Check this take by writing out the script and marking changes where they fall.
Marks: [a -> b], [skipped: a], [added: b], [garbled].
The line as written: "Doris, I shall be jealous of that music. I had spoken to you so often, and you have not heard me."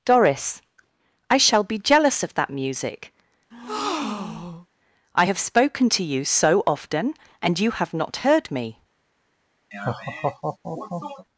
"Doris, I shall be jealous of that music. I [had -> have] spoken to you so often, and you have not heard me."